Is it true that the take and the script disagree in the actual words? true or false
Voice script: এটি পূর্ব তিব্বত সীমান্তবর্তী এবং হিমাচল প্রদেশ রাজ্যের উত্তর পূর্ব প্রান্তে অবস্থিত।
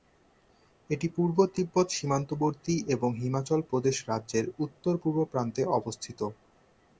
false